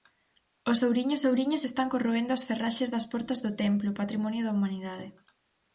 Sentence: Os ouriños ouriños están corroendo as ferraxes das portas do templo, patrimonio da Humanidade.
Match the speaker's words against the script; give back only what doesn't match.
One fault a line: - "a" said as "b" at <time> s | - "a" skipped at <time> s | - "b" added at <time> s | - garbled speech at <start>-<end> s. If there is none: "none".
none